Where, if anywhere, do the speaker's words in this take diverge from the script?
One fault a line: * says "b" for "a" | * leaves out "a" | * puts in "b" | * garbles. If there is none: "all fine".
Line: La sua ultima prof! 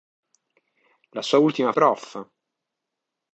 all fine